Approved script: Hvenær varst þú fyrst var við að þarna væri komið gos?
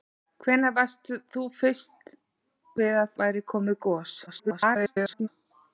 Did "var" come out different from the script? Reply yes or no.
yes